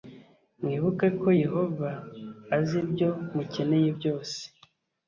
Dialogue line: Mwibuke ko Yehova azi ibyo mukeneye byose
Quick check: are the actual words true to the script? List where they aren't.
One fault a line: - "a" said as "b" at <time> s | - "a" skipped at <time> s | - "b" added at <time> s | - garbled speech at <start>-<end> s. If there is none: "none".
none